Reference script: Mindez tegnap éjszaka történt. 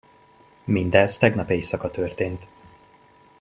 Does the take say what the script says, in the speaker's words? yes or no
yes